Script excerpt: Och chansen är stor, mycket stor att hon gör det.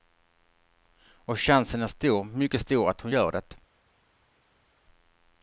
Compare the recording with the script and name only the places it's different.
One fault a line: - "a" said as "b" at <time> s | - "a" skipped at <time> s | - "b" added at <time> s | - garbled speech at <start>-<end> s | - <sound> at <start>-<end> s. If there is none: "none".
none